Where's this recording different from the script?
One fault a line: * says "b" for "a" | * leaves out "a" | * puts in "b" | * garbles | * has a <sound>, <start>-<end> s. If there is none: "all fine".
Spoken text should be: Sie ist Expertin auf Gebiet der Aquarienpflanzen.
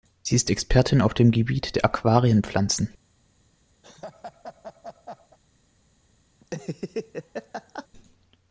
* puts in "dem"
* has a laugh, 3.8-5.4 s
* has a laugh, 6.4-7.9 s